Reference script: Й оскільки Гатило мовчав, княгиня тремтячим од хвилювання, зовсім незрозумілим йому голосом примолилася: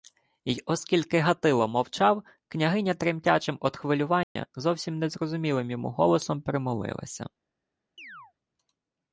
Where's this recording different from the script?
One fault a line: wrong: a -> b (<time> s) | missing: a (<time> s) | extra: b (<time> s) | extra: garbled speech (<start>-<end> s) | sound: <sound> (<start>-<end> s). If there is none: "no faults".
sound: dropout (4.2-4.4 s)
sound: chirp (8.0-8.3 s)